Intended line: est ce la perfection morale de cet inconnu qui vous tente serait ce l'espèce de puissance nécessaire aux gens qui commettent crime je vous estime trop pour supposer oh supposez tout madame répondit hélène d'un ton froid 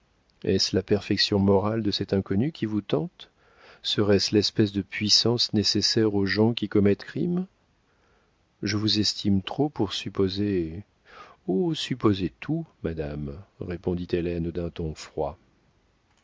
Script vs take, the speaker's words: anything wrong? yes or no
no